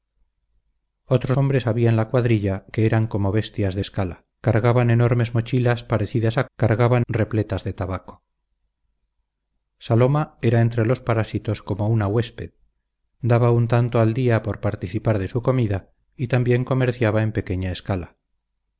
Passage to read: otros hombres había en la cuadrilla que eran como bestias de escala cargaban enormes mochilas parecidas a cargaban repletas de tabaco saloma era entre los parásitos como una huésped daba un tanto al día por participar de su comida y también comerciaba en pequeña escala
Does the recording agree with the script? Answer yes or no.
yes